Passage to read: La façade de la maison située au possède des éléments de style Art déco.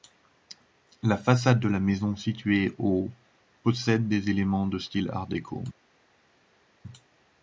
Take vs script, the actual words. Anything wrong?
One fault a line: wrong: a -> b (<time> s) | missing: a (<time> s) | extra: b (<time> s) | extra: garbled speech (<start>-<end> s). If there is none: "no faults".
no faults